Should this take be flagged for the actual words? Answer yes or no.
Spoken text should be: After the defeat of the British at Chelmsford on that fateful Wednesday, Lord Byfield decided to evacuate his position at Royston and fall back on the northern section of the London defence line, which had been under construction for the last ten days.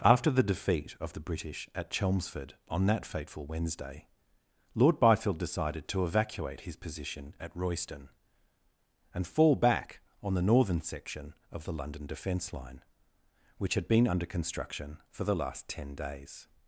no